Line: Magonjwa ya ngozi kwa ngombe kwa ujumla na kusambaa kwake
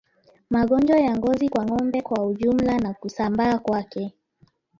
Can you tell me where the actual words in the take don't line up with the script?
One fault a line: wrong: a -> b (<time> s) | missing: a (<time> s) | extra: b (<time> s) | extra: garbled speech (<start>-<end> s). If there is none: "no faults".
no faults